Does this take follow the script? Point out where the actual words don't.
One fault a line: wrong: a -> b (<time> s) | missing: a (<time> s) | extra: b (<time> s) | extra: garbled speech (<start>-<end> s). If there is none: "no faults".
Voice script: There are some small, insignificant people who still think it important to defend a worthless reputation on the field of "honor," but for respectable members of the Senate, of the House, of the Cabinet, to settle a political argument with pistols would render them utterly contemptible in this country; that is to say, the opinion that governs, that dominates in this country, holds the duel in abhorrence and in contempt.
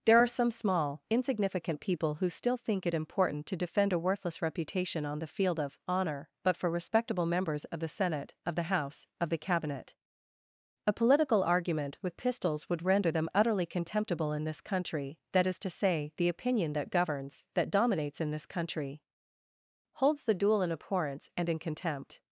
missing: to settle (9.9 s)